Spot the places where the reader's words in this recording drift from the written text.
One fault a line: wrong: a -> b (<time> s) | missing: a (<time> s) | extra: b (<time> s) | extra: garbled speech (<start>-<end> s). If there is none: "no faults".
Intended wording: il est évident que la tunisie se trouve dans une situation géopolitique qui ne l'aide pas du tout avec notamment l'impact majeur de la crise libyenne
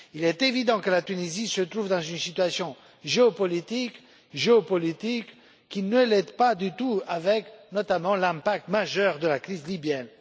extra: géopolitique (4.3 s)